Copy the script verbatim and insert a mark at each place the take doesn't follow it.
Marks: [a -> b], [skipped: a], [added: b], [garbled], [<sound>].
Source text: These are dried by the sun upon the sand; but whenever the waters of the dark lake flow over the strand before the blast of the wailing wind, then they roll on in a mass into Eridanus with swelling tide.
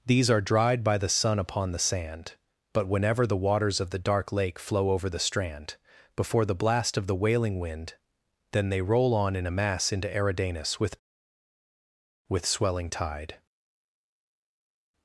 These are dried by the sun upon the sand; but whenever the waters of the dark lake flow over the strand before the blast of the wailing wind, then they roll on in a mass into Eridanus with [added: with] swelling tide.